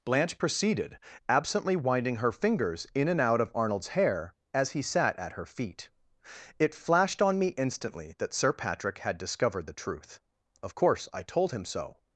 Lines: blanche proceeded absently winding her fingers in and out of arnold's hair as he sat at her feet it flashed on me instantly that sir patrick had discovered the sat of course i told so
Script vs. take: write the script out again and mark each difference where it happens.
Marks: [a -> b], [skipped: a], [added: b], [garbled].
blanche proceeded absently winding her fingers in and out of arnold's hair as he sat at her feet it flashed on me instantly that sir patrick had discovered the [sat -> truth] of course i told [added: him] so